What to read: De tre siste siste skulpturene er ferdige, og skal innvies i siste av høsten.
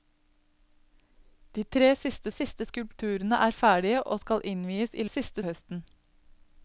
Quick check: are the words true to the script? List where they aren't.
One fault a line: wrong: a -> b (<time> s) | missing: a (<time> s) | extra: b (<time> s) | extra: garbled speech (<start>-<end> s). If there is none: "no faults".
no faults